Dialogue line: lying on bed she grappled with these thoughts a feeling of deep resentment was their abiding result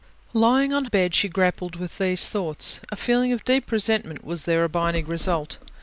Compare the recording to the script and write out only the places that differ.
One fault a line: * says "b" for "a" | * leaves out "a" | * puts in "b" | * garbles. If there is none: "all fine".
all fine